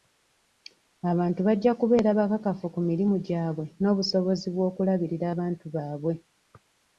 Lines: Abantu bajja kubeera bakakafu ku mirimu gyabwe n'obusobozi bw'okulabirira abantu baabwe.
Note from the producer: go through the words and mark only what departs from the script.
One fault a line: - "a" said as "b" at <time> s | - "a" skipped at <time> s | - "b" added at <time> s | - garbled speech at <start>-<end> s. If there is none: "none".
none